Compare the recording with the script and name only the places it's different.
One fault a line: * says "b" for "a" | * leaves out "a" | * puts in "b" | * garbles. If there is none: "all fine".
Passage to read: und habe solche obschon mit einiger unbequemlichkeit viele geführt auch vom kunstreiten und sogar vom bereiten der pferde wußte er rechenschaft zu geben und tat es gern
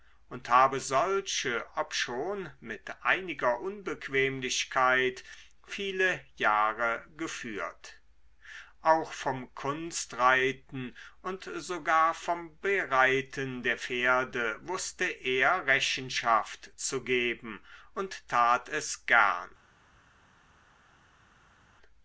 * puts in "jahre"